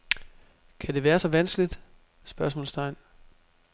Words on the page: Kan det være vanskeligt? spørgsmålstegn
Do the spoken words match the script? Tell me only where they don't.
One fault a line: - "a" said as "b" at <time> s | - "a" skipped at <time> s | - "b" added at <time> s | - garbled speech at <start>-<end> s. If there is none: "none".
- "så" added at 1.2 s